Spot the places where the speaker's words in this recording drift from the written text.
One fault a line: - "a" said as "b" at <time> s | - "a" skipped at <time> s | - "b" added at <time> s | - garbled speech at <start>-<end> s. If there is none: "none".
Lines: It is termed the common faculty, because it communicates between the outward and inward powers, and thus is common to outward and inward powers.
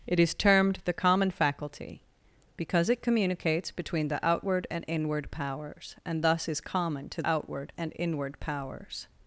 none